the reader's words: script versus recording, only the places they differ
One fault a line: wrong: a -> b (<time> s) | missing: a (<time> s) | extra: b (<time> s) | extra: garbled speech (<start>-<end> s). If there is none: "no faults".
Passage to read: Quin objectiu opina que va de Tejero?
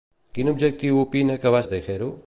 no faults